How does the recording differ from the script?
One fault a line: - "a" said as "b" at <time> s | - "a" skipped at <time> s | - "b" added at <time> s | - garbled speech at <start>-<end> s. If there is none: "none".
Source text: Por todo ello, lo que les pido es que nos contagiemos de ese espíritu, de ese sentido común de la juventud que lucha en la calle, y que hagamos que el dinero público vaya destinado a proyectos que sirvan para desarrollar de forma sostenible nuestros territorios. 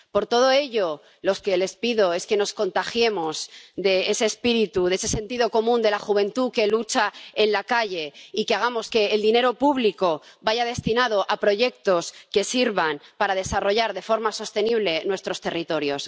none